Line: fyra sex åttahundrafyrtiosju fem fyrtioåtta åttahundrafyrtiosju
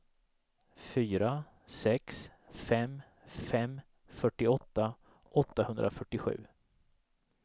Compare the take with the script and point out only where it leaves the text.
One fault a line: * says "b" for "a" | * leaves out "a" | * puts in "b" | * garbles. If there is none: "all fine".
* says "fem" for "åttahundrafyrtiosju"